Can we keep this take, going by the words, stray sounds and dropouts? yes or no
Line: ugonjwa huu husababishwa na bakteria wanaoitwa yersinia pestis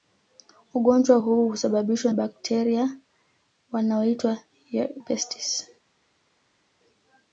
no